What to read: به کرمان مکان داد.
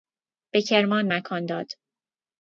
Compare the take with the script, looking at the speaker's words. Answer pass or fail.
pass